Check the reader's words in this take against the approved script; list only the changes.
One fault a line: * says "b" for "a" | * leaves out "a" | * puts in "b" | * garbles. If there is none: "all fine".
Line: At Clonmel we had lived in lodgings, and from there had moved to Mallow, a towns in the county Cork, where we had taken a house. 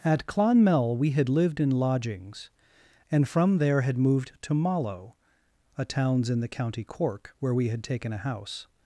all fine